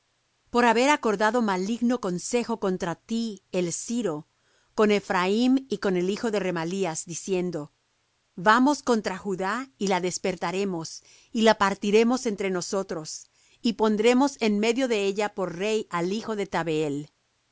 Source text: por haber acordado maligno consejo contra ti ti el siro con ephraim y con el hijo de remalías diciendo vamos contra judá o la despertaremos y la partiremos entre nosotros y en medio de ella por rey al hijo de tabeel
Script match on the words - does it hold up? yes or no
no